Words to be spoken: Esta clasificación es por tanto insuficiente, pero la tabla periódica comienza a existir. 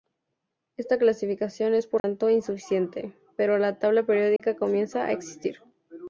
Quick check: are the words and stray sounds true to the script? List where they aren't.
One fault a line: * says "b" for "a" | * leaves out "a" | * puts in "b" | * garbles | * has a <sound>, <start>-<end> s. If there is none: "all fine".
* has a dropout, 2.0-2.0 s
* has a dropout, 4.4-4.4 s